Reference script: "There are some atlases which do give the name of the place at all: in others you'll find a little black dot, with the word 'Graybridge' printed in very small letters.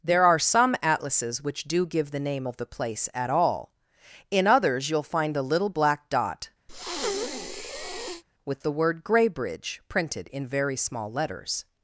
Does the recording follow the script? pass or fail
pass